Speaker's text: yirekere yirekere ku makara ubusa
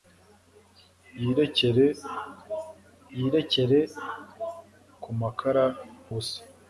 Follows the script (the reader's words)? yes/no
yes